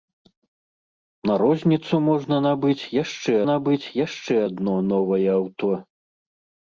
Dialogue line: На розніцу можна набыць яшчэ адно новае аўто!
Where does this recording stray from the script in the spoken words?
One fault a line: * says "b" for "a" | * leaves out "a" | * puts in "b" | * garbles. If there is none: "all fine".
* puts in "набыць яшчэ"